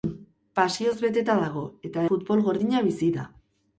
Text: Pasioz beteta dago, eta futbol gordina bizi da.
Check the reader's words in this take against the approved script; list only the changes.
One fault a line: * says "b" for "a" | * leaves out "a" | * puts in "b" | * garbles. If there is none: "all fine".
all fine